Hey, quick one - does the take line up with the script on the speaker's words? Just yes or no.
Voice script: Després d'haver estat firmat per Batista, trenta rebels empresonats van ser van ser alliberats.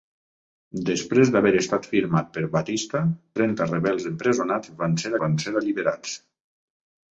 yes